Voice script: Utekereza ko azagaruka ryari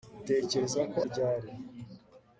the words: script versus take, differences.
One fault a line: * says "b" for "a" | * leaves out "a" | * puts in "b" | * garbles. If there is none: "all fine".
* leaves out "azagaruka"